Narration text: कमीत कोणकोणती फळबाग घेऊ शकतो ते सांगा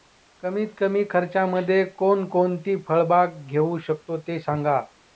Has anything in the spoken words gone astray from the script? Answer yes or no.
yes